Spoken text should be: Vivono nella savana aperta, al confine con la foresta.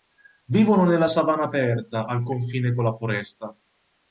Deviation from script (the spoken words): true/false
false